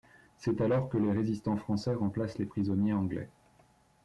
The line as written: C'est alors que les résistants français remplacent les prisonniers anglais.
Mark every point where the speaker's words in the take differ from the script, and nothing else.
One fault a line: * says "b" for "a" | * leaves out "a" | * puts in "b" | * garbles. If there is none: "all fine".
all fine